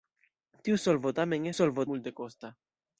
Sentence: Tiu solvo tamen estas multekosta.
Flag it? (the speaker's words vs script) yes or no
yes